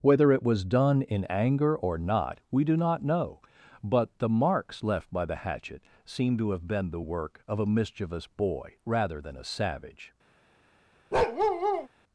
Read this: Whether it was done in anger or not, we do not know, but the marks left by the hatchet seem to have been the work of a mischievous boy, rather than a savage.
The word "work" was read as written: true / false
true